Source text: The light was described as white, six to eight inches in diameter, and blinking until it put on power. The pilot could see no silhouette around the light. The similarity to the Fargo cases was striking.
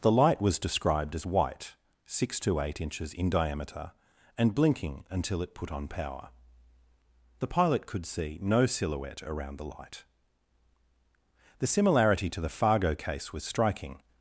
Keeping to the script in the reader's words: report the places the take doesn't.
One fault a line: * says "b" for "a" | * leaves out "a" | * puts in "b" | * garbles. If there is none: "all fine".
* says "case" for "cases"